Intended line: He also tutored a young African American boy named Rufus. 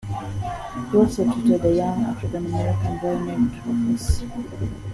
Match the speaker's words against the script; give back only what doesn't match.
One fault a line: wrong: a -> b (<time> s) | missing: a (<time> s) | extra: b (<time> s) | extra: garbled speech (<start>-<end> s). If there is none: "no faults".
no faults